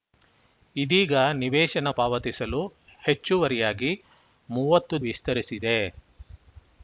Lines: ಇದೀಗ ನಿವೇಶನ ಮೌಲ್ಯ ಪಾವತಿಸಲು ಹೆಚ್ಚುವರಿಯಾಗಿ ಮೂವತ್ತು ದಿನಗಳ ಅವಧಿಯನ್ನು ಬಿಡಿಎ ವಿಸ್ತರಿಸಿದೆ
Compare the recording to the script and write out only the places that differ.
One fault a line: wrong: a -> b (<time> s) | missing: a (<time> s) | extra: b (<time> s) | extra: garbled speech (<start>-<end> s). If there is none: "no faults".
missing: ಮೌಲ್ಯ (1.9 s)
missing: ದಿನಗಳ ಅವಧಿಯನ್ನು ಬಿಡಿಎ (5.0 s)